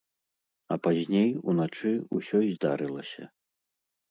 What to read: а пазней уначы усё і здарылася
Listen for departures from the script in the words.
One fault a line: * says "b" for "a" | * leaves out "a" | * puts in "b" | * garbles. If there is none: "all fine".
all fine